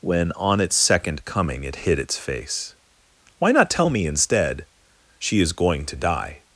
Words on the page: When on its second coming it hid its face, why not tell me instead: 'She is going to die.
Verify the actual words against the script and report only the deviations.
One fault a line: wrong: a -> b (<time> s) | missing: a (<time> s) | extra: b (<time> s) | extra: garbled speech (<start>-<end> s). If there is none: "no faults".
no faults